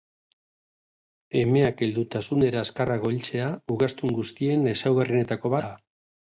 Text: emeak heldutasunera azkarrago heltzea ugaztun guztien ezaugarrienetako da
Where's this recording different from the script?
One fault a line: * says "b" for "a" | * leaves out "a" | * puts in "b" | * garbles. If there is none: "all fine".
all fine